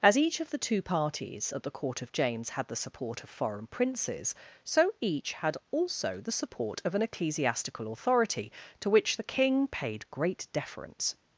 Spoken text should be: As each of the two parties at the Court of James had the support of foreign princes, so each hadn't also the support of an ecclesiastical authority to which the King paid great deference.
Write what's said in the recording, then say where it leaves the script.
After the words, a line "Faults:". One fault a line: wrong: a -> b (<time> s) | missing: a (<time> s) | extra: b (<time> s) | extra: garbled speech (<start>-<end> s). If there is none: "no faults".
As each of the two parties at the Court of James had the support of foreign princes, so each had also the support of an ecclesiastical authority to which the King paid great deference.
Faults:
wrong: hadn't -> had (5.3 s)